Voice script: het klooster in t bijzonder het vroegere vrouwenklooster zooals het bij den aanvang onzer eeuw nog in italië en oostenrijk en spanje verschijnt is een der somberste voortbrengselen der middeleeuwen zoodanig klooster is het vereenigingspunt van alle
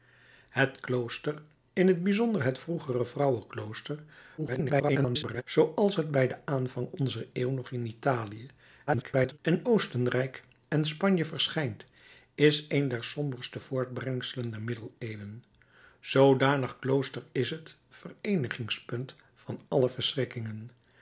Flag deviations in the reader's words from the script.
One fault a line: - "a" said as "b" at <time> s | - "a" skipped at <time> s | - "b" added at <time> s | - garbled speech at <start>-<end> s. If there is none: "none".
- garbled speech at 4.4-5.4 s
- garbled speech at 8.9-9.4 s